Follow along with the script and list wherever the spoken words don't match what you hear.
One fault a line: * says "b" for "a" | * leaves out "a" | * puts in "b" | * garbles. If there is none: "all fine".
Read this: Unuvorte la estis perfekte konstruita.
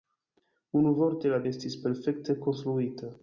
all fine